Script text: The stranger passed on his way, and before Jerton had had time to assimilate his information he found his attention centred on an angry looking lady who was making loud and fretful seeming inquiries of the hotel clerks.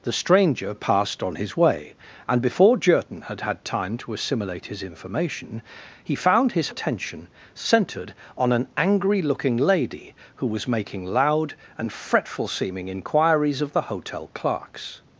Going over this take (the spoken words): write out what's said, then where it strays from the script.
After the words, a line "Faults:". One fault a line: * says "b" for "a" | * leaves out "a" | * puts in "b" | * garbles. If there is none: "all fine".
The stranger passed on his way, and before Jerton had had time to assimilate his information he found his attention centred on an angry looking lady who was making loud and fretful seeming inquiries of the hotel clerks.
Faults:
all fine